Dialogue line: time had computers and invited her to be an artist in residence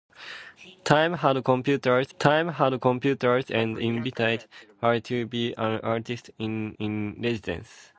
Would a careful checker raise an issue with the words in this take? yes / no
yes